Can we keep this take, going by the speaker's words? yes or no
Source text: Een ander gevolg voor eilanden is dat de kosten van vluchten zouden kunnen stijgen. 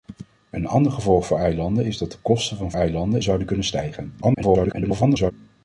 no